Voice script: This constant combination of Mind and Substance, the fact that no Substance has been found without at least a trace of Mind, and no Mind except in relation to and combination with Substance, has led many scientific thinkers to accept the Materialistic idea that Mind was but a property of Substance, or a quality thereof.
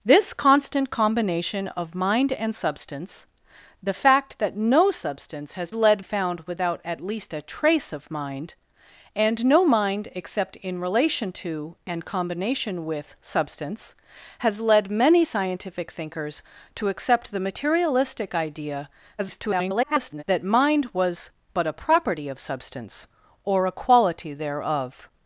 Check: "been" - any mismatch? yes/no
yes